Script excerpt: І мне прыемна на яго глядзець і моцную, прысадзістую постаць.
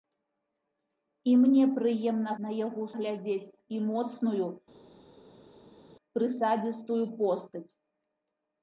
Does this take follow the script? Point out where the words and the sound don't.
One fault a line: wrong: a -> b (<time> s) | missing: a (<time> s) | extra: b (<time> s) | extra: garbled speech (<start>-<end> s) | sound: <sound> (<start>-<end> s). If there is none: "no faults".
no faults